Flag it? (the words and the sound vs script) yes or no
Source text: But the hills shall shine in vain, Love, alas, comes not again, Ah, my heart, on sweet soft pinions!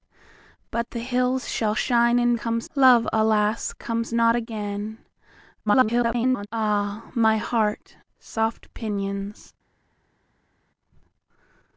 yes